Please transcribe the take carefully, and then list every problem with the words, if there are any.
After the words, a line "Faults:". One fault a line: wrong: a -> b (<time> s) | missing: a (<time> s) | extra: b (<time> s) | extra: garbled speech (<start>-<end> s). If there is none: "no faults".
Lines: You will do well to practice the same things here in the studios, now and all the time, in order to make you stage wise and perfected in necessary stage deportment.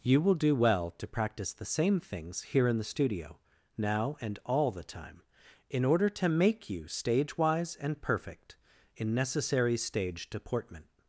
You will do well to practice the same things here in the studio, now and all the time, in order to make you stage wise and perfect in necessary stage deportment.
Faults:
wrong: studios -> studio (2.8 s)
wrong: perfected -> perfect (8.0 s)